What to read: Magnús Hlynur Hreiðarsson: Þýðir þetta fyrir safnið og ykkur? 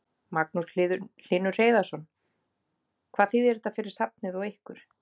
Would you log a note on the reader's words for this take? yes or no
yes